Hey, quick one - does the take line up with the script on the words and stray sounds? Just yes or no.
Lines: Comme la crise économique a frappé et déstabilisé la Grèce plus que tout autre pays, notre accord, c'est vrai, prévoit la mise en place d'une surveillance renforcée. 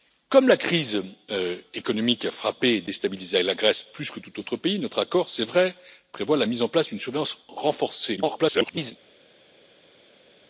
no